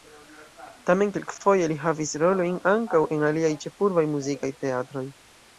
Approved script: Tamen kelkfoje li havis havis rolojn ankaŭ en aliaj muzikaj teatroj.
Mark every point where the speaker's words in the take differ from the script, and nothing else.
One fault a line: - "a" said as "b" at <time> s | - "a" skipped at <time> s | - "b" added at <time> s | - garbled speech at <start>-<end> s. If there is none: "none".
- "havis" skipped at 2.1 s
- "ĉefurbaj" added at 3.7 s